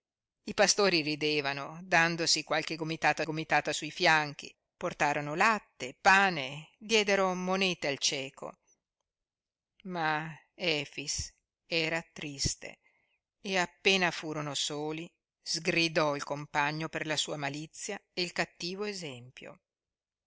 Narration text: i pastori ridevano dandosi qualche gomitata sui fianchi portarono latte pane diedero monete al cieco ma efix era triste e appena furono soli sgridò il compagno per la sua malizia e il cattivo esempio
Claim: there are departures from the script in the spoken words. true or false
true